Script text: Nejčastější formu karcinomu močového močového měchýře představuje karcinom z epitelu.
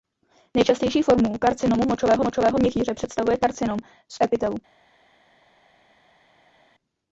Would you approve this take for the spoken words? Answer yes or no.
yes